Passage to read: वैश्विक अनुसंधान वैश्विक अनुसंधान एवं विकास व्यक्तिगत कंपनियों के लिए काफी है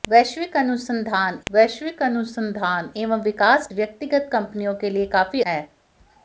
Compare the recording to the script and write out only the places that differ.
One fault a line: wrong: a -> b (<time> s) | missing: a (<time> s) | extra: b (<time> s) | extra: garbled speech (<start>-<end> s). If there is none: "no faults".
no faults